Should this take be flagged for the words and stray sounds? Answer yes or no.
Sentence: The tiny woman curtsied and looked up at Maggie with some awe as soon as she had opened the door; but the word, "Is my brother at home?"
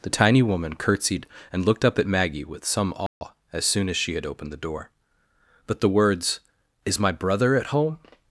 yes